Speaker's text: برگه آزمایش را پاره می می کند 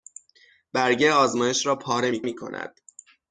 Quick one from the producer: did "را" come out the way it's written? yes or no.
yes